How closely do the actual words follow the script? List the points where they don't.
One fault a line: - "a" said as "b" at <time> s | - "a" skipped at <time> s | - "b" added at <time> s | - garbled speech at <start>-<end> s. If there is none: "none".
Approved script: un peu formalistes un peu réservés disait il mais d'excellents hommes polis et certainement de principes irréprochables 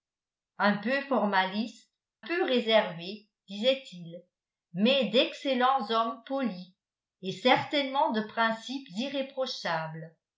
- "un" skipped at 1.9 s